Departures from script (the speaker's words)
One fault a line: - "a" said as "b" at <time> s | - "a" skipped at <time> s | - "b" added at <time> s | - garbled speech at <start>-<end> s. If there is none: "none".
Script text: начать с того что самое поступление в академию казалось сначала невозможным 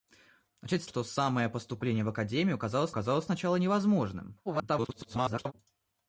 - "того" skipped at 0.9 s
- "казалось" added at 2.9 s
- garbled speech at 4.5-5.5 s